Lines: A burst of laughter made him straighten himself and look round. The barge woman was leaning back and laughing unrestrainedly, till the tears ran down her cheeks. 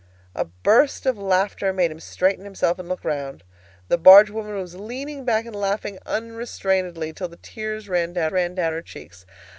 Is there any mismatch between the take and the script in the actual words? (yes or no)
yes